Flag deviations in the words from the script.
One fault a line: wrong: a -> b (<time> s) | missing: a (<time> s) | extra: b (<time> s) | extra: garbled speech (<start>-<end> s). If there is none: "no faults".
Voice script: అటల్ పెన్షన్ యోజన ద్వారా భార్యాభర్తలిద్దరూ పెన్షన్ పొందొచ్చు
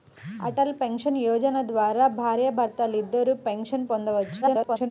extra: garbled speech (4.4-4.9 s)